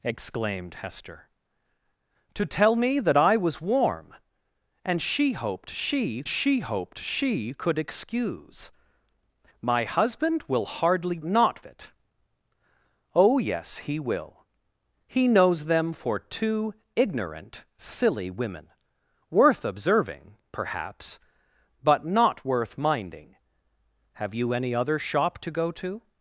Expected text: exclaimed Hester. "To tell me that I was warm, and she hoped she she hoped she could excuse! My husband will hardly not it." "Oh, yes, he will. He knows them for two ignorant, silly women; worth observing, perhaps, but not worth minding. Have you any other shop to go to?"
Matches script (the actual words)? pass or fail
pass